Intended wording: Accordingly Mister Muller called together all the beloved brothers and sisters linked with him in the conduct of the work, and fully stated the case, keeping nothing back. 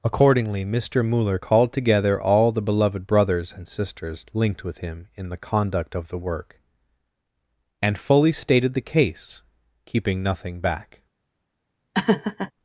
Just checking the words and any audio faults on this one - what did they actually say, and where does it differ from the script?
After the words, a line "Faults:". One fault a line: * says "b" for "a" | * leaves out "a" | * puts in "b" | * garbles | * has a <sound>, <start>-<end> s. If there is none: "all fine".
Accordingly Mister Muller called together all the beloved brothers and sisters linked with him in the conduct of the work, and fully stated the case, keeping nothing back.
Faults:
* has a laugh, 11.9-12.5 s